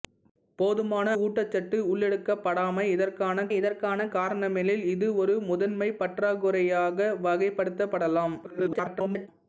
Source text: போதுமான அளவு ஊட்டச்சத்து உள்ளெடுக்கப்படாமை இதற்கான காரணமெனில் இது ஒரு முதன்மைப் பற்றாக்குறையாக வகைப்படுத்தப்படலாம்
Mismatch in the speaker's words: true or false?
true